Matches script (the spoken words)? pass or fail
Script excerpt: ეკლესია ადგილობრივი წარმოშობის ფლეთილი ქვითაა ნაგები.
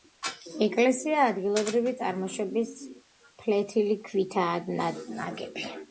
pass